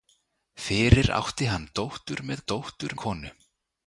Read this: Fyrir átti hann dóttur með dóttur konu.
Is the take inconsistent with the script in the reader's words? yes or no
no